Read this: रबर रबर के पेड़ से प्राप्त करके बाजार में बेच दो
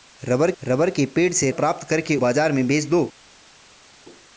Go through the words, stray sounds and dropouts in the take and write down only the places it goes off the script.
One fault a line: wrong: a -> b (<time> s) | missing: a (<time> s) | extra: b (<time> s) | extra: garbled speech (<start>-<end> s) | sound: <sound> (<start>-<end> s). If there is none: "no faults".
no faults